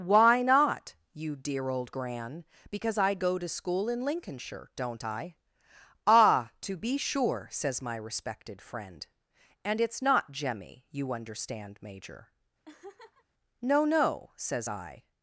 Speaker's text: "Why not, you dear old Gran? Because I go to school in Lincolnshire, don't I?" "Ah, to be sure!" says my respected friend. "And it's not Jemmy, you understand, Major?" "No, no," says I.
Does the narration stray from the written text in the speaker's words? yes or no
no